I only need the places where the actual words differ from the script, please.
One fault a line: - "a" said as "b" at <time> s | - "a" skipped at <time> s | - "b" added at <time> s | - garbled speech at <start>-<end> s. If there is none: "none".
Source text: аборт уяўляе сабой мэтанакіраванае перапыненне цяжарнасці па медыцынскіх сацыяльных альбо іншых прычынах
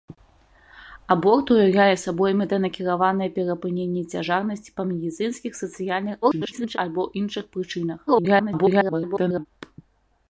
- garbled speech at 6.2-6.8 s
- garbled speech at 8.1-9.5 s